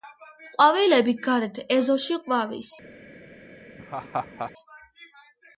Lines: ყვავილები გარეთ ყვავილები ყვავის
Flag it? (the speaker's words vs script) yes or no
yes